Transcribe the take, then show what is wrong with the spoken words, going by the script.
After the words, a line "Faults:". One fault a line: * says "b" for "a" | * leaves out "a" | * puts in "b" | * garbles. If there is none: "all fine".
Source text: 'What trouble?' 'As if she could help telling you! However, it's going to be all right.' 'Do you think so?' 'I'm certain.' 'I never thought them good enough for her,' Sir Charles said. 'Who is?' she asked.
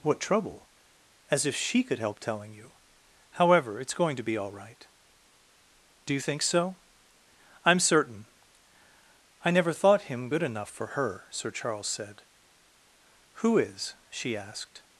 'What trouble?' 'As if she could help telling you! However, it's going to be all right.' 'Do you think so?' 'I'm certain.' 'I never thought him good enough for her,' Sir Charles said. 'Who is?' she asked.
Faults:
* says "him" for "them"